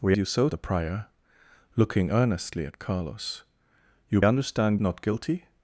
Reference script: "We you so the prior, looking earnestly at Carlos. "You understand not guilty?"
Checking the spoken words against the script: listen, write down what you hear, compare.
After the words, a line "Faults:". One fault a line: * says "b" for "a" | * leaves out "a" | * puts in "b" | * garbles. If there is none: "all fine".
"We you so the prior, looking earnestly at Carlos. "You understand not guilty?"
Faults:
all fine